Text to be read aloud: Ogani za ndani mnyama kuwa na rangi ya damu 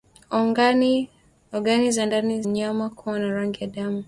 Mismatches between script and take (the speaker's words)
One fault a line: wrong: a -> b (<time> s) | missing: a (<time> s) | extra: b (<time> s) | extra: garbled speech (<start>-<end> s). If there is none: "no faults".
no faults